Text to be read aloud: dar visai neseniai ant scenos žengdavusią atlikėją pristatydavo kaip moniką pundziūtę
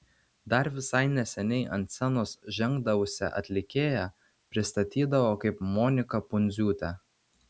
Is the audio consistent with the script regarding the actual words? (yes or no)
yes